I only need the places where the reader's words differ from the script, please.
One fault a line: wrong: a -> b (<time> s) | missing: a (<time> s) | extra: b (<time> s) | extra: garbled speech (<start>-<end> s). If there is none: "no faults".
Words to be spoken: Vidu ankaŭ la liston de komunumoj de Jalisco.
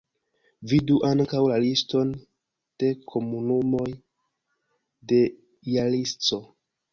no faults